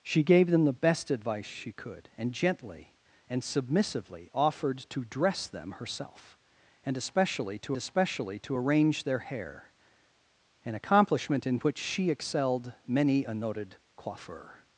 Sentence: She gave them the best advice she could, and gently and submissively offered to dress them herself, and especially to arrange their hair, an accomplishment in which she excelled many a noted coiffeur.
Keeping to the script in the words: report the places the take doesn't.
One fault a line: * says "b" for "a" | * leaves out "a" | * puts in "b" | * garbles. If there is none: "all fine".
* puts in "especially to"